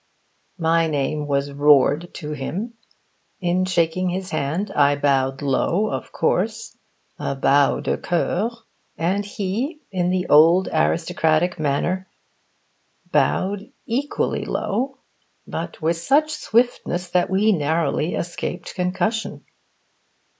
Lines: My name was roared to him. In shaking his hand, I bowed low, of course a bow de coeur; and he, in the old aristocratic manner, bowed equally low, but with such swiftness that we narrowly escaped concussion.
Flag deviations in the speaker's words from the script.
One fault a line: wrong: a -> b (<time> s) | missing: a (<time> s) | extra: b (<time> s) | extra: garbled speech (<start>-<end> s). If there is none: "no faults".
no faults